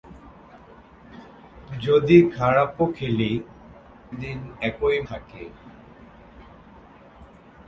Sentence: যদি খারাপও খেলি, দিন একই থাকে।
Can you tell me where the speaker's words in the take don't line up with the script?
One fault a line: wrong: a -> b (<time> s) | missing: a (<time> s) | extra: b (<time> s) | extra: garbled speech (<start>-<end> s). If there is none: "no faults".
no faults